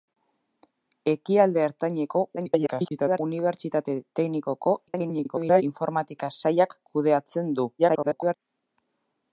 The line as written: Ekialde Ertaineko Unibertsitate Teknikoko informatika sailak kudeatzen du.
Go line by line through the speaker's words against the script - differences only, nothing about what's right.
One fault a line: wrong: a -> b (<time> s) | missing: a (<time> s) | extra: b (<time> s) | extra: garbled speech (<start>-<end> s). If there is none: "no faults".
extra: garbled speech (2.4-3.2 s)
extra: garbled speech (4.9-5.6 s)
extra: garbled speech (7.8-8.3 s)